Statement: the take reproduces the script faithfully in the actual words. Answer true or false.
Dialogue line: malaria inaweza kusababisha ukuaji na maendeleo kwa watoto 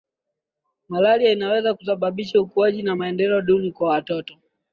false